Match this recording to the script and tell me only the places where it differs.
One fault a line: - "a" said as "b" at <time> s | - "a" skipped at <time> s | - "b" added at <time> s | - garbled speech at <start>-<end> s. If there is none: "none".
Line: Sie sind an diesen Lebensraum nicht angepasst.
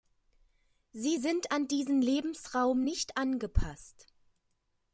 none